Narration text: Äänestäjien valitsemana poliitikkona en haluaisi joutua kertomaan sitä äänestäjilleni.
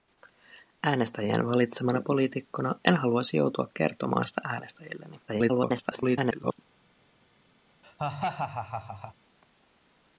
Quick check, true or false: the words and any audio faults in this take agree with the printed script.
false